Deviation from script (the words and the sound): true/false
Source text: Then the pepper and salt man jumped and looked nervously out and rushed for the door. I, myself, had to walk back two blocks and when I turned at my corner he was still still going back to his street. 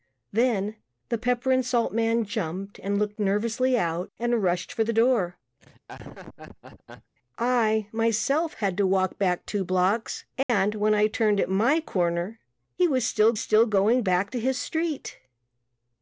true